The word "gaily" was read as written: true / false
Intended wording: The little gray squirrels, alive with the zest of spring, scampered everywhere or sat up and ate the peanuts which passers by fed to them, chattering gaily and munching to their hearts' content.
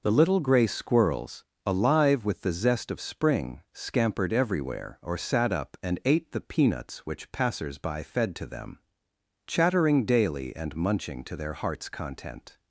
false